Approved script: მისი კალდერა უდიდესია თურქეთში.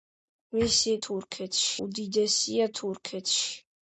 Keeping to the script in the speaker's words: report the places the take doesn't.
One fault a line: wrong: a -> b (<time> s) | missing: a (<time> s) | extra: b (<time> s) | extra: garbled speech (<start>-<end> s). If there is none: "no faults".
wrong: კალდერა -> თურქეთში (1.1 s)